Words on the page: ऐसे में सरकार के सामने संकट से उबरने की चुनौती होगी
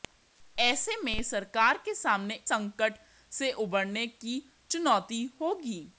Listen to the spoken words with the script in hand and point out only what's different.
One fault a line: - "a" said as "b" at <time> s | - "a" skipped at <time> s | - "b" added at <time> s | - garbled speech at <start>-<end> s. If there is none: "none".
none